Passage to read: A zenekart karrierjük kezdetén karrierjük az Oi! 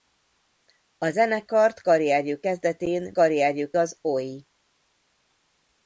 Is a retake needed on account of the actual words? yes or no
no